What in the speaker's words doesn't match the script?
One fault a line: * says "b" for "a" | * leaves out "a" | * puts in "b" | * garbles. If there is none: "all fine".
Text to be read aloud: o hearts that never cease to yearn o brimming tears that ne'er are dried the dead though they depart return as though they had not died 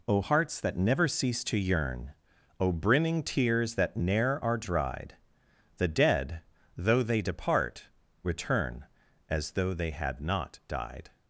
all fine